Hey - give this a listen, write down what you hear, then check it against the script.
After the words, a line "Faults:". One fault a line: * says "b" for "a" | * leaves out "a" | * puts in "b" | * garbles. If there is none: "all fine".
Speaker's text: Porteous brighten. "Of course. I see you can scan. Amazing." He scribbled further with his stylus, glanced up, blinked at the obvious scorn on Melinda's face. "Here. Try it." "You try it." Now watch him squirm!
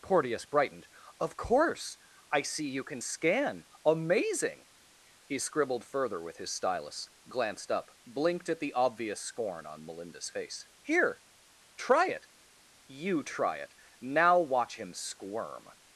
Porteous brightened. "Of course. I see you can scan. Amazing." He scribbled further with his stylus, glanced up, blinked at the obvious scorn on Melinda's face. "Here. Try it." "You try it." Now watch him squirm!
Faults:
* says "brightened" for "brighten"